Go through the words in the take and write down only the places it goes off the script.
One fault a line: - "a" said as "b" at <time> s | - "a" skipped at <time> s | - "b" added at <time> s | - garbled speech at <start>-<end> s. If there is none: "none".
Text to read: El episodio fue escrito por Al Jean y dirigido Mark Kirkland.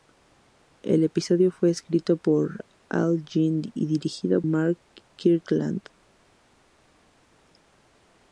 none